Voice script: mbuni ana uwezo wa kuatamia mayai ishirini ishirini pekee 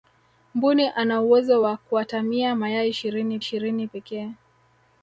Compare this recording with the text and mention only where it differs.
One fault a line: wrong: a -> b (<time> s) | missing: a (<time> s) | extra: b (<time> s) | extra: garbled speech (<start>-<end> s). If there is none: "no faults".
no faults